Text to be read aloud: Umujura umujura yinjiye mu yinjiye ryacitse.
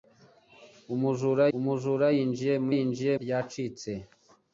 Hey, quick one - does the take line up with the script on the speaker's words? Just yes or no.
yes